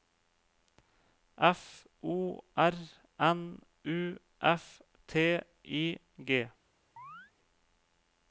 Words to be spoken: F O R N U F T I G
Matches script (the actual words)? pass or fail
pass